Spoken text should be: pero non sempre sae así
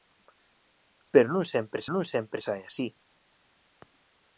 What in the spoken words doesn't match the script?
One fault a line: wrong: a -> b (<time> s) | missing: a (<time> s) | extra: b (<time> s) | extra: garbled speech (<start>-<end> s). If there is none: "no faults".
extra: non sempre (1.9 s)